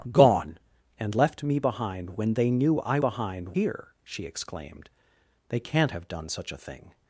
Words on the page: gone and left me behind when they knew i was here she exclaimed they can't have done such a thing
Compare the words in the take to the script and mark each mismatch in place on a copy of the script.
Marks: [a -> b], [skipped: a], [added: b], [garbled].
gone and left me behind when they knew i [was -> behind] here she exclaimed they can't have done such a thing